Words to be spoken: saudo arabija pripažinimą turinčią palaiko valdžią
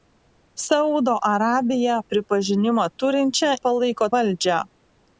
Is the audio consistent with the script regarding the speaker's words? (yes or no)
yes